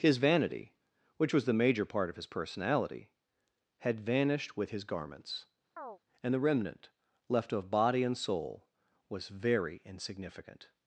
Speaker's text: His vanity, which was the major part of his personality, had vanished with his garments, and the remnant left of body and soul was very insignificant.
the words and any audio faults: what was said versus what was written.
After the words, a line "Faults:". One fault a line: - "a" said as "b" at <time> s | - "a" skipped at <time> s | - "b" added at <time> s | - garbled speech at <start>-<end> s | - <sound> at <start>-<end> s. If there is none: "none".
His vanity, which was the major part of his personality, had vanished with his garments, and the remnant left of body and soul was very insignificant.
Faults:
- chirp at 5.8-6.0 s